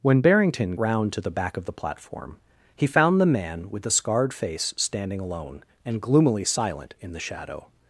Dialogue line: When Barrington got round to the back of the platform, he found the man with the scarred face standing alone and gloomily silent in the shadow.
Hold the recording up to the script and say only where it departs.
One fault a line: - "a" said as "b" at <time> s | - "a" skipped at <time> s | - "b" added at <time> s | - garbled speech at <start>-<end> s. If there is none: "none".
- "got" skipped at 0.8 s